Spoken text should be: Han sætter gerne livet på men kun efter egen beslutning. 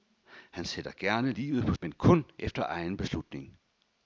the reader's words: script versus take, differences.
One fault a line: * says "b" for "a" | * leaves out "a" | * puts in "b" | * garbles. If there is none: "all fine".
all fine